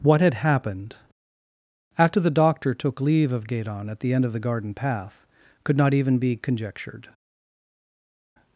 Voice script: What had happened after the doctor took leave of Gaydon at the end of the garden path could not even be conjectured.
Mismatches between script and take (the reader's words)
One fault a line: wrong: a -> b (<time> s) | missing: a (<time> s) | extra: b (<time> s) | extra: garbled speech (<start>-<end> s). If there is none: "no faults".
no faults